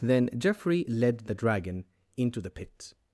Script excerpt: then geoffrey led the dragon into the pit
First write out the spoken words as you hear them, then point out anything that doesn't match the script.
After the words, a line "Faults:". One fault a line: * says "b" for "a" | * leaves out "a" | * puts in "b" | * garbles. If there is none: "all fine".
then geoffrey led the dragon into the pit
Faults:
all fine